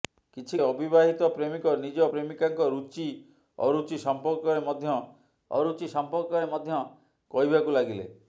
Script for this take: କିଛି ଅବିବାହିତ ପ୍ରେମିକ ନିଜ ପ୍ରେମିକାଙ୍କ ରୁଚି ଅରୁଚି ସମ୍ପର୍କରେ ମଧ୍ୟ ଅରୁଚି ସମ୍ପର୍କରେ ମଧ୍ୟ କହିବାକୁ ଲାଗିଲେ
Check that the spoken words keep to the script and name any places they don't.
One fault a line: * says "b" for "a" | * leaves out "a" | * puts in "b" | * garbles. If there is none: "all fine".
all fine